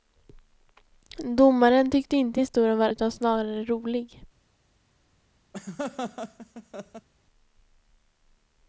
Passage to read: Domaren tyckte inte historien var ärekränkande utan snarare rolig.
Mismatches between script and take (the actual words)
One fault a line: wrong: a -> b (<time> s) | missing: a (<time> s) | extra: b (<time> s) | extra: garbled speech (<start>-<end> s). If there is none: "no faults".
missing: ärekränkande (2.9 s)